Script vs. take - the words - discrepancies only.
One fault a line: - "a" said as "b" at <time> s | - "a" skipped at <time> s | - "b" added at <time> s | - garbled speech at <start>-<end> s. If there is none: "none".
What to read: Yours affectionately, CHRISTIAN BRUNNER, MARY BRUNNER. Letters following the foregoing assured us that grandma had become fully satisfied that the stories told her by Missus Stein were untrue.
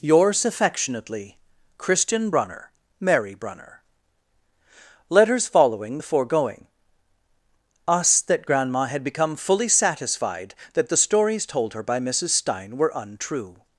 - "assured" skipped at 6.7 s